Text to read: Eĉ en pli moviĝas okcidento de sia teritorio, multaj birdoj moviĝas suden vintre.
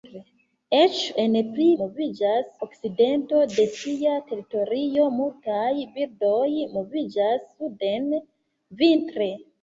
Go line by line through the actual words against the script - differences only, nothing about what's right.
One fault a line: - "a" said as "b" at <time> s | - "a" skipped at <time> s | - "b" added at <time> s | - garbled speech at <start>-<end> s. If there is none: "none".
none